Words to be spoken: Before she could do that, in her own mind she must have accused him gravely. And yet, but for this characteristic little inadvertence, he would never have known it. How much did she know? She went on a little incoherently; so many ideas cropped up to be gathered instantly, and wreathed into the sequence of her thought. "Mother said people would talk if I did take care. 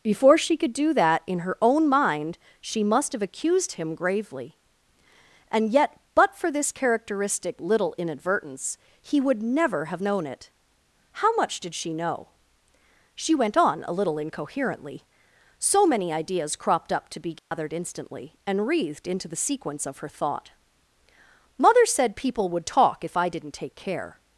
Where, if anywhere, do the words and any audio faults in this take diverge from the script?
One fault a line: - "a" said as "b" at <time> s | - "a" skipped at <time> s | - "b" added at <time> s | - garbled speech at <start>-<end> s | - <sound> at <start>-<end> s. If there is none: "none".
- dropout at 17.4-17.5 s
- "did" said as "didn't" at 23.3 s